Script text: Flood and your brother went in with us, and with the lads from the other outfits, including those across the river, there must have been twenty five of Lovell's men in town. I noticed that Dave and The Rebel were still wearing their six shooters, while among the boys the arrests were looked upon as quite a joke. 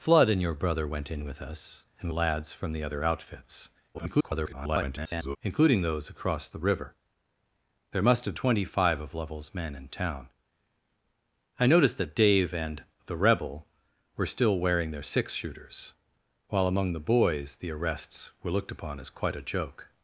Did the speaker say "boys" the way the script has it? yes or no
yes